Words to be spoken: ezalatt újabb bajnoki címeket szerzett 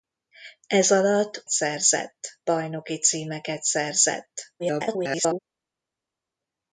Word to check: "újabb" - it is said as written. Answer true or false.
false